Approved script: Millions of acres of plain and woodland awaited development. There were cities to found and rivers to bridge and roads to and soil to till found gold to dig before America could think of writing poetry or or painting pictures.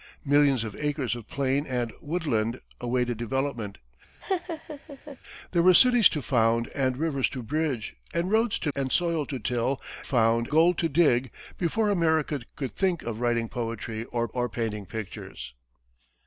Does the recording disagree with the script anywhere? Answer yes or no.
no